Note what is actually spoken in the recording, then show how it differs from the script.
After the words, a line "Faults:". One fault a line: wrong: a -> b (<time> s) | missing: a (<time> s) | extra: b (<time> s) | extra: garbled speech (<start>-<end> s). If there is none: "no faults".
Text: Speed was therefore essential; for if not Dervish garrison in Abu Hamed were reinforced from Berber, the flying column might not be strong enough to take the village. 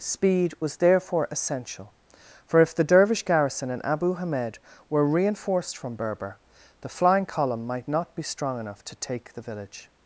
Speed was therefore essential; for if the Dervish garrison in Abu Hamed were reinforced from Berber, the flying column might not be strong enough to take the village.
Faults:
wrong: not -> the (2.7 s)